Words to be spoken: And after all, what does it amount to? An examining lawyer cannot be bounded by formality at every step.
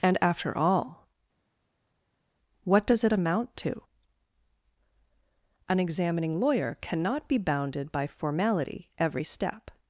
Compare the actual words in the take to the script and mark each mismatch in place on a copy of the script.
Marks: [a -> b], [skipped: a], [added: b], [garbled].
And after all, what does it amount to? An examining lawyer cannot be bounded by formality [skipped: at] every step.